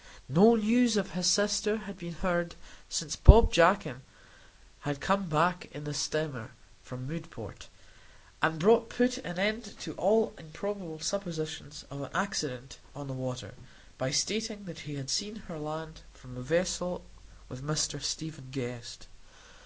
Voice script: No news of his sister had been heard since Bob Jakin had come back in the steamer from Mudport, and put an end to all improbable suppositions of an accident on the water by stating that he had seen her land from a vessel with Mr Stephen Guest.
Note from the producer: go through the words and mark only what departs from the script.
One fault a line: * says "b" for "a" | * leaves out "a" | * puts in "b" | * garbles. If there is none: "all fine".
all fine